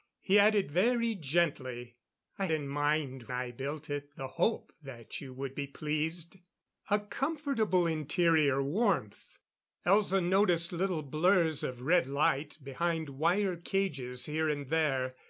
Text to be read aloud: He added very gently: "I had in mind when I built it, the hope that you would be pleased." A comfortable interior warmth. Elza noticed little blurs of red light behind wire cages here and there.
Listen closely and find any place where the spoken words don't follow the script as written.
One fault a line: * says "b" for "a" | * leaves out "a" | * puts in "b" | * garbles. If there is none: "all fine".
* leaves out "had"
* leaves out "when"